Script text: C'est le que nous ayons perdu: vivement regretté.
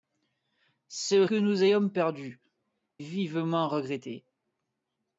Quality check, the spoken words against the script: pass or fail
pass